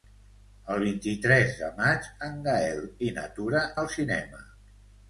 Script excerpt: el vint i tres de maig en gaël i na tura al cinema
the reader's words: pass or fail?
pass